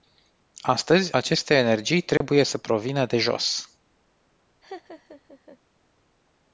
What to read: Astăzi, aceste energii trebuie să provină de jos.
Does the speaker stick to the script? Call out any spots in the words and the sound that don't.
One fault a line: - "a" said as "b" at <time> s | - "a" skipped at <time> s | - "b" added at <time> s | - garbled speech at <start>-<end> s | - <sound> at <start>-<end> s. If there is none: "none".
- dropout at 2.2-2.2 s
- laugh at 4.6-5.6 s